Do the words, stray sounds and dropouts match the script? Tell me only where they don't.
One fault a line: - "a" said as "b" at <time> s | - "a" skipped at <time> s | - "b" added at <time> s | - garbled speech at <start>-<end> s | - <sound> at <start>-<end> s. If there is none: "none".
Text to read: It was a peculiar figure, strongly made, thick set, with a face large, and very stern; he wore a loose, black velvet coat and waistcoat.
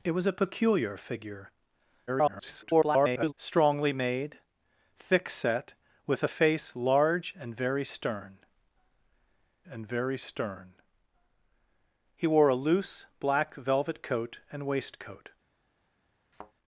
- garbled speech at 2.1-3.3 s
- "and very stern" added at 9.7 s
- thud at 16.3-16.5 s